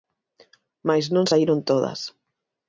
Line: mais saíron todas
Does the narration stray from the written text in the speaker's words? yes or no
yes